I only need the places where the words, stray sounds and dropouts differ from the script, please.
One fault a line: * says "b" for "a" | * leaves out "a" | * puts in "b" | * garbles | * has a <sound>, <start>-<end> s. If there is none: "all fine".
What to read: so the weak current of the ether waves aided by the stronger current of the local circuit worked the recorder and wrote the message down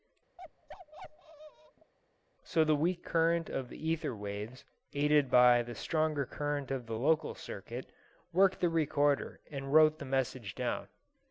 * has a bark, 0.4-1.9 s